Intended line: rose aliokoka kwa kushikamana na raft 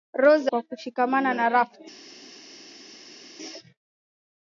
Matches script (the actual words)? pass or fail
fail